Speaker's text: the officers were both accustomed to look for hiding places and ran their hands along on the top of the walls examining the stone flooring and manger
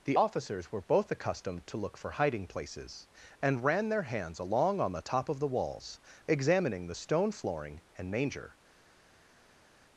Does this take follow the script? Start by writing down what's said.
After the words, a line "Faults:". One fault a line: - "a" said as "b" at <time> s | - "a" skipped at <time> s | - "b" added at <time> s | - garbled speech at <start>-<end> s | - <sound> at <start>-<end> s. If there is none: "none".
the officers were both accustomed to look for hiding places and ran their hands along on the top of the walls examining the stone flooring and manger
Faults:
none